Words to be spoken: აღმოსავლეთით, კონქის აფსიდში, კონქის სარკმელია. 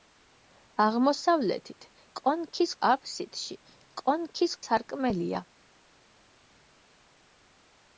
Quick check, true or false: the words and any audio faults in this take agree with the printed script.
true